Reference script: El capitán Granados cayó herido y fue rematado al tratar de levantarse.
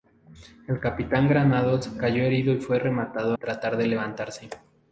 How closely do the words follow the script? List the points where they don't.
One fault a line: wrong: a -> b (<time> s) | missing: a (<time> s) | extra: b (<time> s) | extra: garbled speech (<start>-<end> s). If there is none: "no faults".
missing: al (3.4 s)